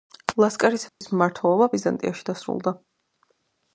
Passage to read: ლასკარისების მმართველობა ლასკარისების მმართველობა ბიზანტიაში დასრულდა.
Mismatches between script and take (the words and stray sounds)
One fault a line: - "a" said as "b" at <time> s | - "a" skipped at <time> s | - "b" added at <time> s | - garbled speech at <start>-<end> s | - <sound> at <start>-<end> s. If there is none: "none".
- dropout at 0.9-1.0 s
- "ლასკარისების მმართველობა" skipped at 1.7 s